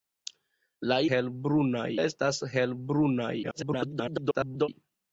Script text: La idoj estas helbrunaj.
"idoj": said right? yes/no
no